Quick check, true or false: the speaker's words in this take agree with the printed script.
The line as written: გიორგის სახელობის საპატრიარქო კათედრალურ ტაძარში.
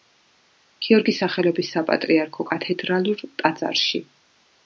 true